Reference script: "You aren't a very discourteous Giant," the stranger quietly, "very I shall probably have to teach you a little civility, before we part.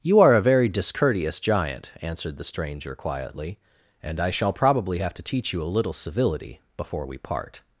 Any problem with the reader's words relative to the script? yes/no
yes